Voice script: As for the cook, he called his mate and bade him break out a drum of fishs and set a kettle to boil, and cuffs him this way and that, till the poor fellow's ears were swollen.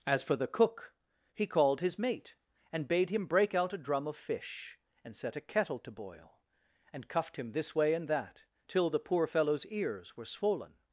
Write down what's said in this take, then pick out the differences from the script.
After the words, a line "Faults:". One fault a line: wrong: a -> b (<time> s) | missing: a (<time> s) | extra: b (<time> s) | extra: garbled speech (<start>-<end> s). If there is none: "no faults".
As for the cook, he called his mate and bade him break out a drum of fish and set a kettle to boil, and cuffed him this way and that, till the poor fellow's ears were swollen.
Faults:
wrong: fishs -> fish (4.1 s)
wrong: cuffs -> cuffed (7.1 s)